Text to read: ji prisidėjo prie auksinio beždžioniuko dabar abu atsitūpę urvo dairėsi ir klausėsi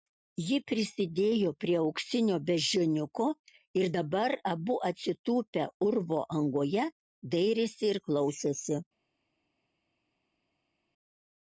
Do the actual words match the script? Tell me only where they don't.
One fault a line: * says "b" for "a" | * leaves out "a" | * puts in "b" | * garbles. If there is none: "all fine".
* puts in "ir"
* puts in "angoje"